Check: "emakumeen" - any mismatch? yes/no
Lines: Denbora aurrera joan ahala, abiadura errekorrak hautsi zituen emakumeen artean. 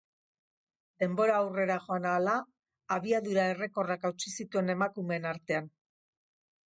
no